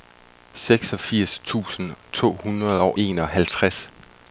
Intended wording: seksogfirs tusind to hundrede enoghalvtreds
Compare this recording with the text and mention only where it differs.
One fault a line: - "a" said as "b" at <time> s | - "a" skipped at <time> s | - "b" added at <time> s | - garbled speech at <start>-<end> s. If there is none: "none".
- "og" added at 2.8 s